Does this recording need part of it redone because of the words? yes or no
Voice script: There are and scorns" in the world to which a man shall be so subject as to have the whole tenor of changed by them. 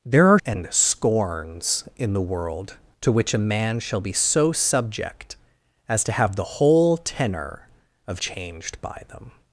no